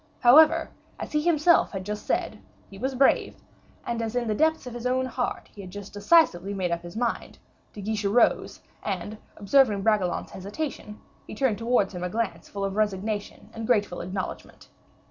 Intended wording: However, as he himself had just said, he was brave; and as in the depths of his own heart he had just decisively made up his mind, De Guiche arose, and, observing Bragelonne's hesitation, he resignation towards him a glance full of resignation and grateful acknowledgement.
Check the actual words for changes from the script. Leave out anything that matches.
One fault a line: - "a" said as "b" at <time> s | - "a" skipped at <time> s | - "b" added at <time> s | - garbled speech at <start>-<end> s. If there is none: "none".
- "resignation" said as "turned" at 11.3 s